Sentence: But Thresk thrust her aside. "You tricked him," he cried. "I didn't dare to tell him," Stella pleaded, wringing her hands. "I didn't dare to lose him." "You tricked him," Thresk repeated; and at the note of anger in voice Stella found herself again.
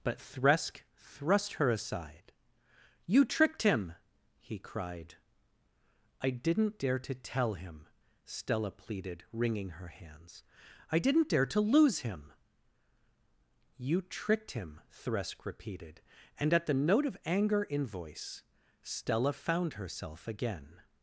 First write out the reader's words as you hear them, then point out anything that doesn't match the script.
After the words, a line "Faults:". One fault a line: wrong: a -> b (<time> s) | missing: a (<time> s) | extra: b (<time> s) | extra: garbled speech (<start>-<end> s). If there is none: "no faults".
But Thresk thrust her aside. "You tricked him," he cried. "I didn't dare to tell him," Stella pleaded, wringing her hands. "I didn't dare to lose him." "You tricked him," Thresk repeated; and at the note of anger in voice Stella found herself again.
Faults:
no faults